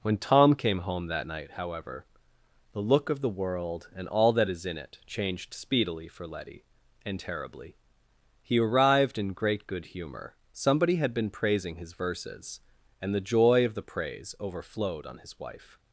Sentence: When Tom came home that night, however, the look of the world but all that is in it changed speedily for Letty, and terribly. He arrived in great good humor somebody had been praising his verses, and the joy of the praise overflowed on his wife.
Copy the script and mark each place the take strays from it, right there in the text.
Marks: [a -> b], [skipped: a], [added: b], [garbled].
When Tom came home that night, however, the look of the world [but -> and] all that is in it changed speedily for Letty, and terribly. He arrived in great good humor somebody had been praising his verses, and the joy of the praise overflowed on his wife.